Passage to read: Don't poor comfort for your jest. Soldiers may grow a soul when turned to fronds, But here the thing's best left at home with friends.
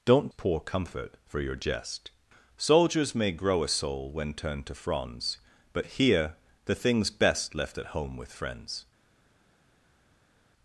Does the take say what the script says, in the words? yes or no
yes